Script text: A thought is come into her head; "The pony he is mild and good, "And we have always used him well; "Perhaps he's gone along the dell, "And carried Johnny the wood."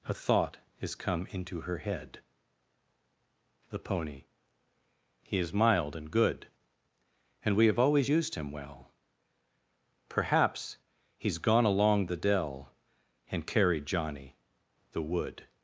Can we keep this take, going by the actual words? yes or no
yes